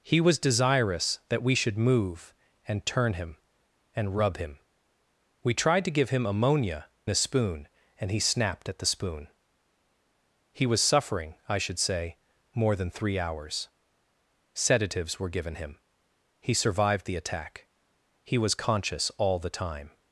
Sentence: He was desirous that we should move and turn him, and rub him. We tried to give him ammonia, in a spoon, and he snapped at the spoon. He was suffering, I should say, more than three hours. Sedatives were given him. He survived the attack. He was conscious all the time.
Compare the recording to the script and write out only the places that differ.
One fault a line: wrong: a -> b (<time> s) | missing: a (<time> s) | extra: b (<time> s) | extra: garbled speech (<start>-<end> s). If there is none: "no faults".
missing: in (6.9 s)